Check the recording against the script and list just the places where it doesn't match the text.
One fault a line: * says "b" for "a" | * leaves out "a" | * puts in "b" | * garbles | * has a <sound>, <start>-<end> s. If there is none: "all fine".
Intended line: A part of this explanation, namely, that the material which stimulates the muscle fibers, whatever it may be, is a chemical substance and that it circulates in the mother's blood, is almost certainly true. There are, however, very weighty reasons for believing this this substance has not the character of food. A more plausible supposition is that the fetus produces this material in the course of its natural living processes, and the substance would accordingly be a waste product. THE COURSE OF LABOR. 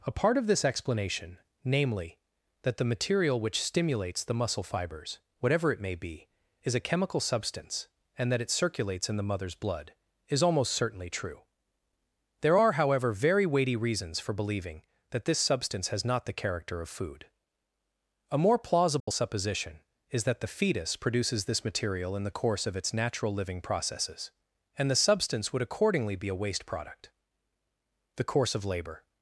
* says "that" for "this"
* has a dropout, 19.0-19.1 s